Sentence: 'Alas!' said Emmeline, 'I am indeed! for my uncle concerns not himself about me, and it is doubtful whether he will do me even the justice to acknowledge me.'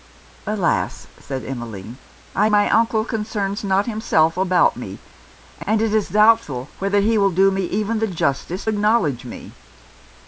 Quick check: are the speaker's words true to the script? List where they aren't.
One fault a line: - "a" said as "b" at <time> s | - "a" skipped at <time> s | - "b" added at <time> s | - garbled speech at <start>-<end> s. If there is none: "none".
- "am indeed for" skipped at 2.5 s
- "to" skipped at 8.6 s